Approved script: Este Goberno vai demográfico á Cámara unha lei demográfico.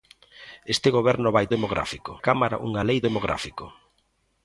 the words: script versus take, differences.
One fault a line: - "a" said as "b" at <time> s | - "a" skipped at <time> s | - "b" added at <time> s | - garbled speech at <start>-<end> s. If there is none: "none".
none